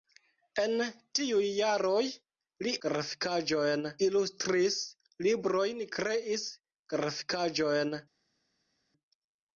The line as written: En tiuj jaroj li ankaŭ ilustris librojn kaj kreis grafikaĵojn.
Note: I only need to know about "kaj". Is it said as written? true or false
false